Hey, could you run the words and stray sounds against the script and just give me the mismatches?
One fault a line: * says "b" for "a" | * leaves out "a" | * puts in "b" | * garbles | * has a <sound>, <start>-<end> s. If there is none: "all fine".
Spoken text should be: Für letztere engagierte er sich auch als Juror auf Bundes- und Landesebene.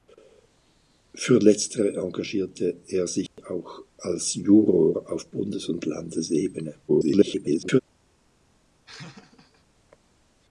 * has a dropout, 3.3-3.4 s
* garbles
* has a laugh, 8.9-9.6 s